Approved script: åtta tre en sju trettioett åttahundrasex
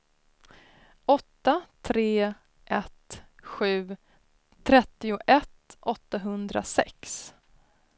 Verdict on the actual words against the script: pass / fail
fail